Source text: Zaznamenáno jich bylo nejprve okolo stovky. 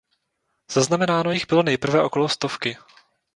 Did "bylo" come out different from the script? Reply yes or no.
no